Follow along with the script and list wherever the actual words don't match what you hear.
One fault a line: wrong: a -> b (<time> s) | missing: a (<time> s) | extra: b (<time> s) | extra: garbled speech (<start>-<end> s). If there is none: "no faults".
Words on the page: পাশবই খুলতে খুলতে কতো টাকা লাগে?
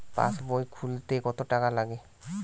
missing: খুলতে (1.1 s)